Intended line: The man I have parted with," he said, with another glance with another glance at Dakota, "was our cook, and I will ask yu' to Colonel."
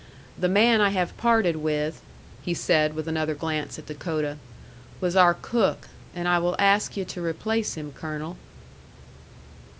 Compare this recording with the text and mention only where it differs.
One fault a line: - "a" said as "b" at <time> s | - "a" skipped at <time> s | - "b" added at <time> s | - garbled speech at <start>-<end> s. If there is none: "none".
- "with another glance" skipped at 3.8 s
- "replace him" added at 7.2 s